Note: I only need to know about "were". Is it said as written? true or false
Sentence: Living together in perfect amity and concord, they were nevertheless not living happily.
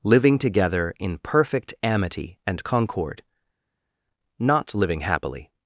false